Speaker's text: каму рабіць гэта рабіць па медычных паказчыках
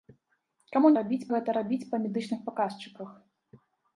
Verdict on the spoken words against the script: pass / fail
pass